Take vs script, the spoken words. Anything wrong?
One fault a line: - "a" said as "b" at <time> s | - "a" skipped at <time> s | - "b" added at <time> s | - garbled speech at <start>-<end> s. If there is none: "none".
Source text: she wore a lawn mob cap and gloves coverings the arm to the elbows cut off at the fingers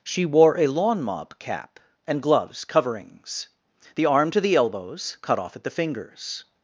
none